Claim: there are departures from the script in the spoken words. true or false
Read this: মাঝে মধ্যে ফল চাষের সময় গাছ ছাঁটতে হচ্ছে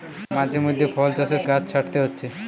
true